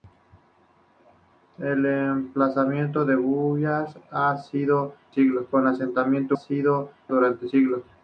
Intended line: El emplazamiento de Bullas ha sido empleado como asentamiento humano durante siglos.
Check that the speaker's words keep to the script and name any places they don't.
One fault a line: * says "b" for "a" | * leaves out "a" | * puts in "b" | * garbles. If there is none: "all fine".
* says "siglos" for "empleado"
* says "sido" for "humano"